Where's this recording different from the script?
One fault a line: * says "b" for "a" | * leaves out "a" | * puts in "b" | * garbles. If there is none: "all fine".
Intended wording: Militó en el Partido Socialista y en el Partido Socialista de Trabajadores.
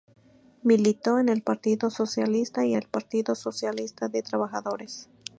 * leaves out "en"